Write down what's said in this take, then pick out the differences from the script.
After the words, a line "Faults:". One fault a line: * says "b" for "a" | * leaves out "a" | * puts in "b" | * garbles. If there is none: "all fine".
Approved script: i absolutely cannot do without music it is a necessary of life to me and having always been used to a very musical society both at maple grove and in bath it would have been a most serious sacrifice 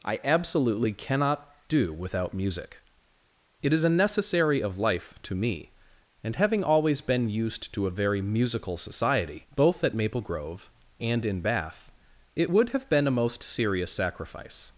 i absolutely cannot do without music it is a necessary of life to me and having always been used to a very musical society both at maple grove and in bath it would have been a most serious sacrifice
Faults:
all fine